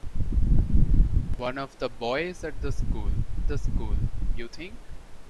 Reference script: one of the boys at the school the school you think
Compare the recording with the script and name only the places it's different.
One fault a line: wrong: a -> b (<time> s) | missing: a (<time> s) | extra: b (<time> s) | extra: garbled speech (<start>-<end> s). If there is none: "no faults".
no faults